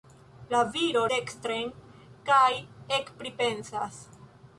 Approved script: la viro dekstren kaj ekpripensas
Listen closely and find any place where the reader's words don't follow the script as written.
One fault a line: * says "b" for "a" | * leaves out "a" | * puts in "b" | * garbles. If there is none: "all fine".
all fine